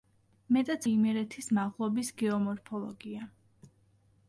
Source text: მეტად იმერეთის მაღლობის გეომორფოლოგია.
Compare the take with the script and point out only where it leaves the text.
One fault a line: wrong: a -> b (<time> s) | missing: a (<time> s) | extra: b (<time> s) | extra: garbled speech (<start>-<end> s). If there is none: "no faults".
no faults